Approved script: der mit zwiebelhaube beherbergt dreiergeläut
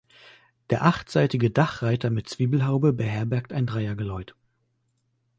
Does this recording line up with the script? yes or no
no